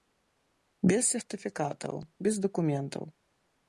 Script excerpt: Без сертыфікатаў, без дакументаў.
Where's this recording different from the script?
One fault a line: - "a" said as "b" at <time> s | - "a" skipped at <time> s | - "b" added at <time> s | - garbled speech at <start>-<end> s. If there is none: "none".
none